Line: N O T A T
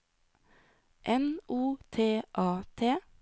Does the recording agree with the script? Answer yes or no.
yes